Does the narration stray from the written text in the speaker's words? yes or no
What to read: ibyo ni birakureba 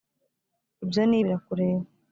no